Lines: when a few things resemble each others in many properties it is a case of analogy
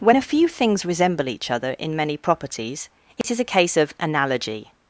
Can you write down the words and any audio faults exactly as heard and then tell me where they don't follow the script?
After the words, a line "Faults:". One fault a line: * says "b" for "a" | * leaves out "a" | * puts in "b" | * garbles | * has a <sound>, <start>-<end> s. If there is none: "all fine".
when a few things resemble each other in many properties it is a case of analogy
Faults:
* says "other" for "others"
* has a dropout, 3.2-3.2 s